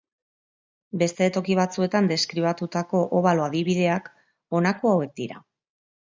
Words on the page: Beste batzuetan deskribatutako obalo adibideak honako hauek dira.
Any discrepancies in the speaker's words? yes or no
yes